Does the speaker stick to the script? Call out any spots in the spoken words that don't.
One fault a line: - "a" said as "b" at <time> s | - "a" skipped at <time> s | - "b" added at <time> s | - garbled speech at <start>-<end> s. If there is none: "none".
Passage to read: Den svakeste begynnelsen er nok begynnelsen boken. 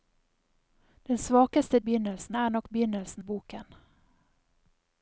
none